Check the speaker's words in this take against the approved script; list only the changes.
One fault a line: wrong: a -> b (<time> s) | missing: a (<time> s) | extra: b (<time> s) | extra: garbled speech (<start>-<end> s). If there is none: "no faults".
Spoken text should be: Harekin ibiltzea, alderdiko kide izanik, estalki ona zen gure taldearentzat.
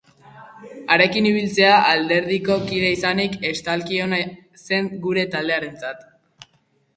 no faults